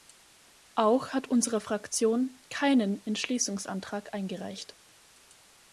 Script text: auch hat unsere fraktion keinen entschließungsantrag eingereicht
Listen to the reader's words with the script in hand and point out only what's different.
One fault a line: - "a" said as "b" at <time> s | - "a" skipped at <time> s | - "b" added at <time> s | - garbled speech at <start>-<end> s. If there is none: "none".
none